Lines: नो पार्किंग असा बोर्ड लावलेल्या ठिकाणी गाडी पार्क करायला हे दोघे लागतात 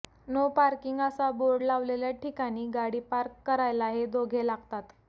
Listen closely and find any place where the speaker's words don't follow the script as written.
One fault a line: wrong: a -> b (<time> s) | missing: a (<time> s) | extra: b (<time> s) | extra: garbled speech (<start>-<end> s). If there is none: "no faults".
no faults